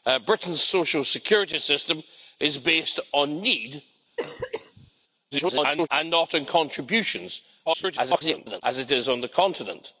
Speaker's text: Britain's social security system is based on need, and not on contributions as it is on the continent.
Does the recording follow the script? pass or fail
fail